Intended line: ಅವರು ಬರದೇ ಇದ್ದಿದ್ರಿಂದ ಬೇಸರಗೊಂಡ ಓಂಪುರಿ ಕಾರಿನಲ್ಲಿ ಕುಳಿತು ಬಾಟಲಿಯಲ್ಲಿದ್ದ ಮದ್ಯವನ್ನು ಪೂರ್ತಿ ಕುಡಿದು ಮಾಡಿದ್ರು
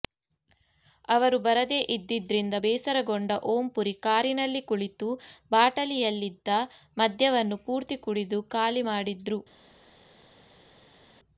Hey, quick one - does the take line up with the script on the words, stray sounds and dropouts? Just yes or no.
no